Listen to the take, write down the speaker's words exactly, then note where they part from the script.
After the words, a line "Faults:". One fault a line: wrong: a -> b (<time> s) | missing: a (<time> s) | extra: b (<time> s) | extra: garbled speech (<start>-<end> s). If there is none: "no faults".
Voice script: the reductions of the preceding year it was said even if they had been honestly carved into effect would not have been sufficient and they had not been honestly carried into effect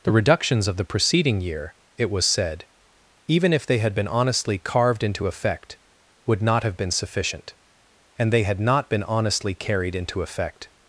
the reductions of the preceding year it was said even if they had been honestly carved into effect would not have been sufficient and they had not been honestly carried into effect
Faults:
no faults